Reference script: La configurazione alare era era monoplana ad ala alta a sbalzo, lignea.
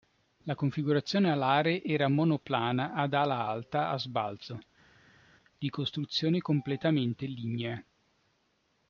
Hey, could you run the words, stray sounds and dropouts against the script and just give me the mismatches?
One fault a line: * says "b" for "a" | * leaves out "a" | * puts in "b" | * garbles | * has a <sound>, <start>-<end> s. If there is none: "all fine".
* leaves out "era"
* puts in "di costruzione completamente"